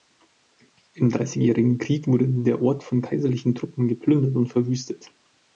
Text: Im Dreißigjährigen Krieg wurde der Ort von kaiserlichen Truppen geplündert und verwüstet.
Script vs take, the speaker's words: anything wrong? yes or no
no